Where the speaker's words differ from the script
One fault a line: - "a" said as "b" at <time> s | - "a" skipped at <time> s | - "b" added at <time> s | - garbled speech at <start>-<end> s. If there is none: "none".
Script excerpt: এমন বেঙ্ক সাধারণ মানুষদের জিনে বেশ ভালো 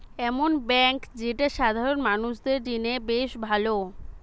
- "যেটা" added at 1.2 s